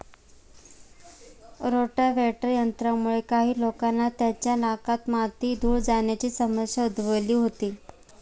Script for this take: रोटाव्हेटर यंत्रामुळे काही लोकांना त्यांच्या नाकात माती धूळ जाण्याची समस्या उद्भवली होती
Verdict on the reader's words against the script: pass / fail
pass